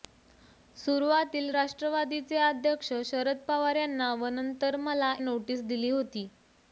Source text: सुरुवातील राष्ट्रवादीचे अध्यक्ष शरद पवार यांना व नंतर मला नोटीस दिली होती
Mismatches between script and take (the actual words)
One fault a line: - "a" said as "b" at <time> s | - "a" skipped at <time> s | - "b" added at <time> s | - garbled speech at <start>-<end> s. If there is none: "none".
none